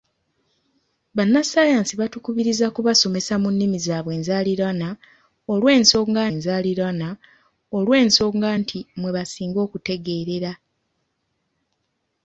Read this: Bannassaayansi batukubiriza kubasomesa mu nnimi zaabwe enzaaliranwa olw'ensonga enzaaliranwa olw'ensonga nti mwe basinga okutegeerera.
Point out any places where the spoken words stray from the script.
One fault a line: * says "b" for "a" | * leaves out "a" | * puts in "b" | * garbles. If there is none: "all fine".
all fine